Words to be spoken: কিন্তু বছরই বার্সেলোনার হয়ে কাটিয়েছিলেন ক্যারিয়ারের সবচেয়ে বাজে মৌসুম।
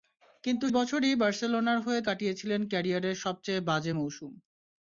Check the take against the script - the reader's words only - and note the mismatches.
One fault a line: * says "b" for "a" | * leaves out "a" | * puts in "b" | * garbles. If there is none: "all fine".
all fine